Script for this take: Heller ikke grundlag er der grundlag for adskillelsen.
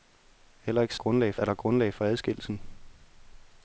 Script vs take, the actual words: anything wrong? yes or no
no